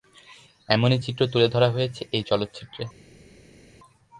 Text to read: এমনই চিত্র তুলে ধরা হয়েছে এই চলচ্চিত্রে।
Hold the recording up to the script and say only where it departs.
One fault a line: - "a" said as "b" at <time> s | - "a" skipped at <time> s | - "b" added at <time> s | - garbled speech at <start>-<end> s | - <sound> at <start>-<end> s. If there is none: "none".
none